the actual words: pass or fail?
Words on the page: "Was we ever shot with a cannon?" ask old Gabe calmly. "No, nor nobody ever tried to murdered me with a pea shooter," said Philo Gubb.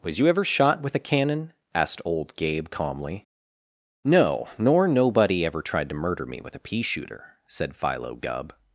fail